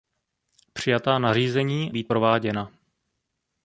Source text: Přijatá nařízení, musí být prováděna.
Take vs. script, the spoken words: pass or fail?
fail